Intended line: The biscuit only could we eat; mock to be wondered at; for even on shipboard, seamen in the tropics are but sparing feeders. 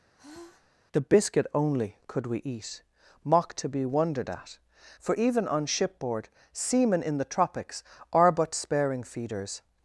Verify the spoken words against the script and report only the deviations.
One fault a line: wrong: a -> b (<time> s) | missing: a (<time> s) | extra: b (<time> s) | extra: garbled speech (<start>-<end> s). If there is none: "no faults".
no faults